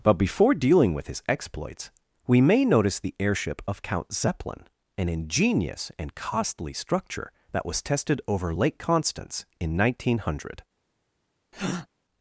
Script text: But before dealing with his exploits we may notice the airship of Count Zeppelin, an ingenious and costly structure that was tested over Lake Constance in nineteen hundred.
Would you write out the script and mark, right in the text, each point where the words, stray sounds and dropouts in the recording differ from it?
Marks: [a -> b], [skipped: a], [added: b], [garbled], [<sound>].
But before dealing with his exploits we may notice the airship of Count Zeppelin, an ingenious and costly structure that was tested over Lake Constance in nineteen hundred. [breath]